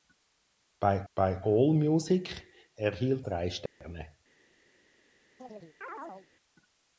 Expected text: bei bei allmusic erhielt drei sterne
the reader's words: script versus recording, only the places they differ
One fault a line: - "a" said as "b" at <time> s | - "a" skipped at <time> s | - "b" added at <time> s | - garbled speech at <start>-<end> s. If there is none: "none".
none